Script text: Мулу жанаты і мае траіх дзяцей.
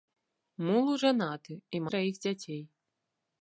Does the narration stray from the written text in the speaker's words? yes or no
yes